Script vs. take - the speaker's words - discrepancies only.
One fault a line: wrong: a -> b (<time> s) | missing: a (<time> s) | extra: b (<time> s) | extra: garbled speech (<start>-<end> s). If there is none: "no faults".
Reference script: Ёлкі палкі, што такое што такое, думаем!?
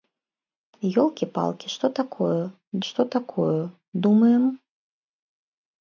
no faults